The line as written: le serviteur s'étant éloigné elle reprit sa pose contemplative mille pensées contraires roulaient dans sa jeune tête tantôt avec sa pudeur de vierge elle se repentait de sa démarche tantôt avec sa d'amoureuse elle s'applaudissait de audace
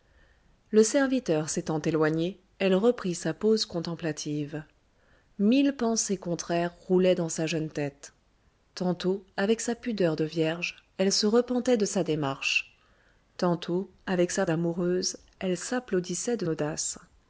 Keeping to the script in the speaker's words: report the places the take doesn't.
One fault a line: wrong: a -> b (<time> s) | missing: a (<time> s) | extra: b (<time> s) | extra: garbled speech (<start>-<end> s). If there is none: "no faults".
no faults